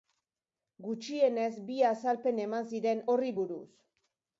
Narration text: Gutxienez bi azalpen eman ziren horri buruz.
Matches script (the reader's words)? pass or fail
pass